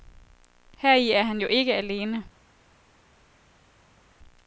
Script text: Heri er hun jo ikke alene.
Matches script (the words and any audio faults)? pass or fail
fail